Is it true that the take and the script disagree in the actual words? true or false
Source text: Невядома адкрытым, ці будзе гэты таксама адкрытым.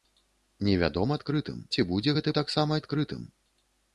false